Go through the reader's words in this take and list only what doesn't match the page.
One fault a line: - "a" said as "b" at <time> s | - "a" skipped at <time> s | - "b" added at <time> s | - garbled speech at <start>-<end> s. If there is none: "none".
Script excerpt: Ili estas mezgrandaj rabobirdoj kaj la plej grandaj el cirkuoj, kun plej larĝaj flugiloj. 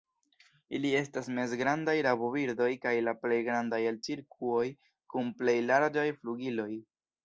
none